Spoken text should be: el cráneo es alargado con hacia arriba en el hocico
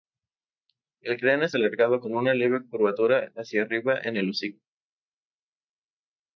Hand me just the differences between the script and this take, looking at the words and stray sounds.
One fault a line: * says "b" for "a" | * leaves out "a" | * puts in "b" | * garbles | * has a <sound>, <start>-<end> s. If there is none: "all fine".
* puts in "una leve curvatura"